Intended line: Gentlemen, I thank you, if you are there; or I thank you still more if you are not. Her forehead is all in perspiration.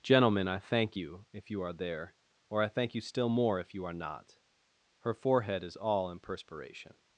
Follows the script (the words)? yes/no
yes